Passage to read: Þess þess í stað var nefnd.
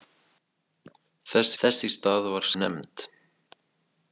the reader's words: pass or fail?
pass